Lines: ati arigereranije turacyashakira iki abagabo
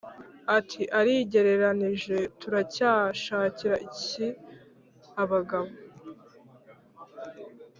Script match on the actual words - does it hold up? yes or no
yes